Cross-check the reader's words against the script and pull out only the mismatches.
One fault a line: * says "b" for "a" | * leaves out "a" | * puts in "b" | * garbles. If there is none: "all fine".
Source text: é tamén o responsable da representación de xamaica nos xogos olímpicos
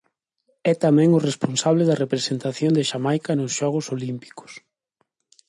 all fine